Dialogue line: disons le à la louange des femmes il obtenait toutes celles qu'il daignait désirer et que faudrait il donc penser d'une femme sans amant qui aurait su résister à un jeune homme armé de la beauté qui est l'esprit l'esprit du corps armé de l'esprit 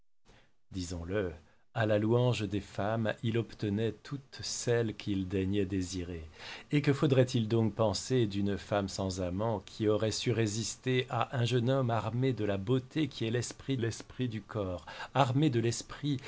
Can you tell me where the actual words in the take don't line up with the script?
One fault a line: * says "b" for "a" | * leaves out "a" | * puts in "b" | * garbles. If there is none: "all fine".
all fine